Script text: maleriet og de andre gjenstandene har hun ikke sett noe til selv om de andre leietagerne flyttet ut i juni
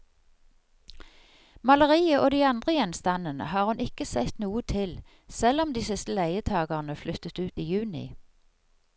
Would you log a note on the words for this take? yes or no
yes